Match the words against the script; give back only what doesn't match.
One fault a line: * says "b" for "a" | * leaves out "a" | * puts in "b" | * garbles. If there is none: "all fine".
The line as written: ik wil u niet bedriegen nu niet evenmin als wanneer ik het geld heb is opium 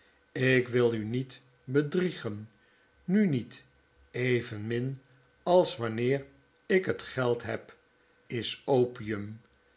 all fine